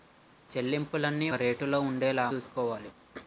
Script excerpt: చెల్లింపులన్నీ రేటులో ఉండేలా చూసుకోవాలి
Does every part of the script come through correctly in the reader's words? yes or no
yes